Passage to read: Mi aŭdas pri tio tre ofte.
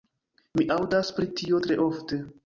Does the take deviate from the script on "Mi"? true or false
false